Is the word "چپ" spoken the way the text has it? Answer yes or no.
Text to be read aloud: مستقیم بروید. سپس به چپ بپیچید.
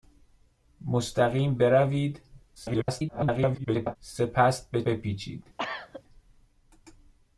no